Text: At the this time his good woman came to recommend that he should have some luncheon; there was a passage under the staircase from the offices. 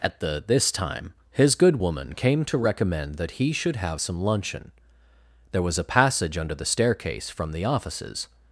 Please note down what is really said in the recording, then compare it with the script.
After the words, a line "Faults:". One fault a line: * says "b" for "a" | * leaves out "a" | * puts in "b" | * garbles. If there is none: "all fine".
At the this time his good woman came to recommend that he should have some luncheon; there was a passage under the staircase from the offices.
Faults:
all fine